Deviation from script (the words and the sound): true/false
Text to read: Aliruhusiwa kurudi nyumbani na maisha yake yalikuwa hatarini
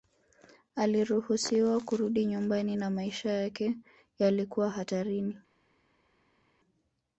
false